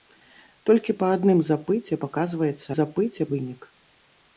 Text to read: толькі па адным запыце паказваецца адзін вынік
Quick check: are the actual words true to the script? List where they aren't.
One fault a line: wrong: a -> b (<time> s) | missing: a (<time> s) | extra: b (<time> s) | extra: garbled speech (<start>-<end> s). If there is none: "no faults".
wrong: адзін -> запыце (2.8 s)